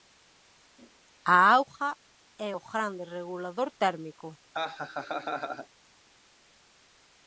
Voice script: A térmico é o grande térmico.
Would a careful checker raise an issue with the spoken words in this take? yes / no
yes